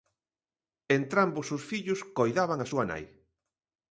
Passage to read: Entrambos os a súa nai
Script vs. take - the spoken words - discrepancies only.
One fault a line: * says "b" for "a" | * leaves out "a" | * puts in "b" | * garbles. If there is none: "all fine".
* puts in "fillos coidaban"